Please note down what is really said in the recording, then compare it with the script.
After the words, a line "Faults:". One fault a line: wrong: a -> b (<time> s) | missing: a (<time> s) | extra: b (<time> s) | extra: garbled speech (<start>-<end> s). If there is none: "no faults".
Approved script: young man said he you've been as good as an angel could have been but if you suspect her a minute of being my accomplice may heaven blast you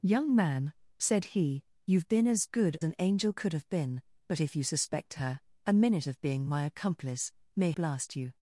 young man said he you've been as good an angel could have been but if you suspect her a minute of being my accomplice may blast you
Faults:
missing: as (2.8 s)
missing: heaven (7.7 s)